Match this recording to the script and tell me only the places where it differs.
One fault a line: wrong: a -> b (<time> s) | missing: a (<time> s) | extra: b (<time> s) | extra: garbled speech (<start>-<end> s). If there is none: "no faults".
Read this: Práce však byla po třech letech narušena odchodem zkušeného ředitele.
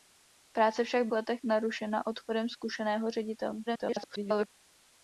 missing: byla po třech (1.1 s)
extra: garbled speech (3.7-4.5 s)